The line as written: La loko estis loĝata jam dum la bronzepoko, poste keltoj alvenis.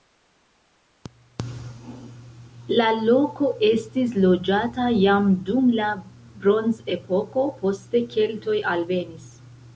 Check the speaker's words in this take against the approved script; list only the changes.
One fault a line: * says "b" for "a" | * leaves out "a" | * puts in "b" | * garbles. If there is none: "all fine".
all fine